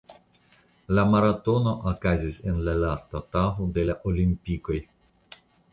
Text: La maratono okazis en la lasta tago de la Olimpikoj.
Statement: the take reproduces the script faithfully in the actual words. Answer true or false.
true